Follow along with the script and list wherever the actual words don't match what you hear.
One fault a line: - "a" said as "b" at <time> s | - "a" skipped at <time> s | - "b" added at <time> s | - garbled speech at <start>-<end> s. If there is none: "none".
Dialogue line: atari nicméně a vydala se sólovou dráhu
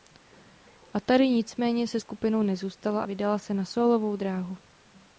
- "se skupinou nezůstala" added at 1.9 s
- "na" added at 3.5 s